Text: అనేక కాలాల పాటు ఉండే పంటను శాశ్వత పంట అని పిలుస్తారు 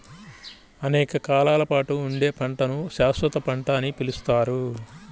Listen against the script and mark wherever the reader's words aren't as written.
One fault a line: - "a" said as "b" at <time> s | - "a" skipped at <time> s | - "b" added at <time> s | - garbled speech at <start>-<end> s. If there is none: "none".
none